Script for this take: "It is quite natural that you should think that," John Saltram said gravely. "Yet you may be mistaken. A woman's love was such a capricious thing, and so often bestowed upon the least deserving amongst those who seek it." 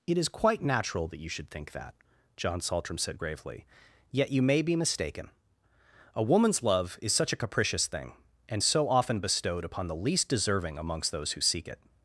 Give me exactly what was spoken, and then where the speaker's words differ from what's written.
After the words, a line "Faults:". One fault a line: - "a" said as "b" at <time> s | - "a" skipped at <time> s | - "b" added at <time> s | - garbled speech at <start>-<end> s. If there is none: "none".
"It is quite natural that you should think that," John Saltram said gravely. "Yet you may be mistaken. A woman's love is such a capricious thing, and so often bestowed upon the least deserving amongst those who seek it."
Faults:
- "was" said as "is" at 7.0 s